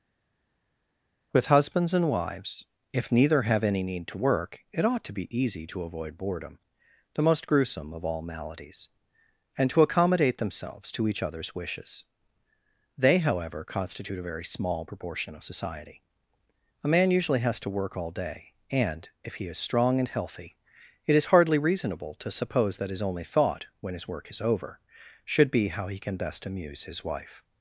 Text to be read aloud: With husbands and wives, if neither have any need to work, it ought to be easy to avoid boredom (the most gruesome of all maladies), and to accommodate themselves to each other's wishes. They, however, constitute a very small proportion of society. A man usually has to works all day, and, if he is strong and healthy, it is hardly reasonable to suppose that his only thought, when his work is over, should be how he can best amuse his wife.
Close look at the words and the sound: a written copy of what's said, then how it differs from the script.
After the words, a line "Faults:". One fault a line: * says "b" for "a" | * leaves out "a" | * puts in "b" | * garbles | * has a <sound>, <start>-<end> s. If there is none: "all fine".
With husbands and wives, if neither have any need to work, it ought to be easy to avoid boredom (the most gruesome of all maladies), and to accommodate themselves to each other's wishes. They, however, constitute a very small proportion of society. A man usually has to work all day, and, if he is strong and healthy, it is hardly reasonable to suppose that his only thought, when his work is over, should be how he can best amuse his wife.
Faults:
* says "work" for "works"